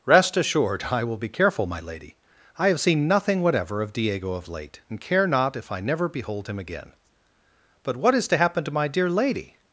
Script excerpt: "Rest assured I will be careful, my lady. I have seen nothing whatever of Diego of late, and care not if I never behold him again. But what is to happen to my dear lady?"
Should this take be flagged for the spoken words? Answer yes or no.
no